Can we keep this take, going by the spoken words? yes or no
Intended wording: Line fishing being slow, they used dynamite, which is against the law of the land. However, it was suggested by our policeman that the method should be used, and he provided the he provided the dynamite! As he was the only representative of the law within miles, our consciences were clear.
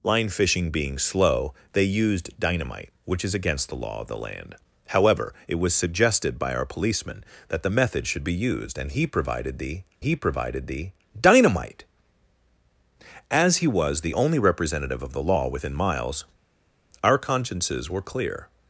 yes